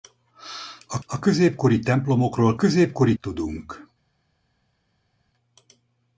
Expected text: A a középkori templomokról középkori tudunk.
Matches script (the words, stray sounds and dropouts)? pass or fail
pass